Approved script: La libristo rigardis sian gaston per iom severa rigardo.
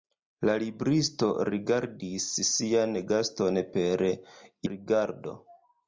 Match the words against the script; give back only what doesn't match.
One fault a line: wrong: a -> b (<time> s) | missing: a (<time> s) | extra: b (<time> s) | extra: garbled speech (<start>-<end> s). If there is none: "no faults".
missing: iom severa (4.1 s)